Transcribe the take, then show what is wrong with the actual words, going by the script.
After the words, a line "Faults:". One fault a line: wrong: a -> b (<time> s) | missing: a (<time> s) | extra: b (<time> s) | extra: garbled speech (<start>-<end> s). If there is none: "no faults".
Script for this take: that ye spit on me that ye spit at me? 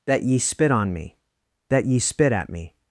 that ye spit on me that ye spit at me?
Faults:
no faults